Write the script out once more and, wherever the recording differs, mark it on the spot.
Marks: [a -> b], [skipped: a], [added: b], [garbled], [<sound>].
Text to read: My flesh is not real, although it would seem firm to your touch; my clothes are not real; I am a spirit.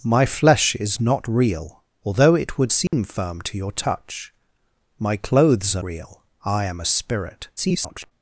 My flesh is not real, although it would seem [dropout] firm to your touch; my clothes are [skipped: not] real; I am a spirit. [garbled]